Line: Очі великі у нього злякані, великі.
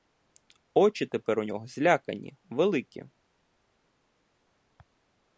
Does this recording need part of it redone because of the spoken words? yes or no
yes